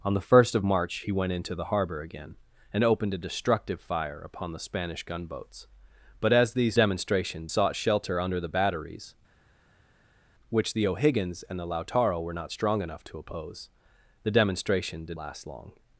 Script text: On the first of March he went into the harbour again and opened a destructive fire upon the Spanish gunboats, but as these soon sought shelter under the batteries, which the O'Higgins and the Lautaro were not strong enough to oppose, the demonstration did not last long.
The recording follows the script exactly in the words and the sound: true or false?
false